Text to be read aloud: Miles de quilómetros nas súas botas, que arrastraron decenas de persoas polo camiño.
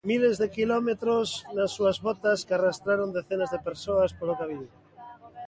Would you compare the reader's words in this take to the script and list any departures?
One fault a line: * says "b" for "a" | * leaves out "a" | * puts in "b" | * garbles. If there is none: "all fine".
all fine